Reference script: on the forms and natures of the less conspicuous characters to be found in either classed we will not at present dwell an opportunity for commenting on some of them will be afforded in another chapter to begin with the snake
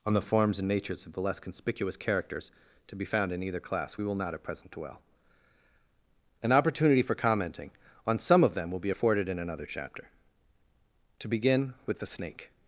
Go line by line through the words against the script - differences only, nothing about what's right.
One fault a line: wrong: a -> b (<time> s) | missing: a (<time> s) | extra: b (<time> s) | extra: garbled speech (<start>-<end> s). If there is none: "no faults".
wrong: classed -> class (3.6 s)